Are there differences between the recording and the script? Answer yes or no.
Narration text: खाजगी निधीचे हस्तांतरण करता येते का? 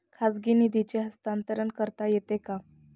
no